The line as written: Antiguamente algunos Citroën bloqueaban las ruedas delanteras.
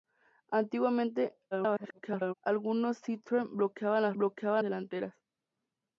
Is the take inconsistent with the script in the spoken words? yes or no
yes